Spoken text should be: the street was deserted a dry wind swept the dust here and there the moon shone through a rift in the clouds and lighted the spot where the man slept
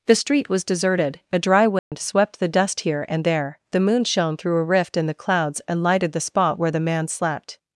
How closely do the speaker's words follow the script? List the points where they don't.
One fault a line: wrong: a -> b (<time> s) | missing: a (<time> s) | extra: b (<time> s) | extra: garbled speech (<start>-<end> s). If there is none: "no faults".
no faults